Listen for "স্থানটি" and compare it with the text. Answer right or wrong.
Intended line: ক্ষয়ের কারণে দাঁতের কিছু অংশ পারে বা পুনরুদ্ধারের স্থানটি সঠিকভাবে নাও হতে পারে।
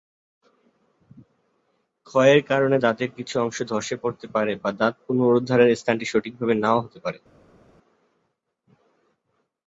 right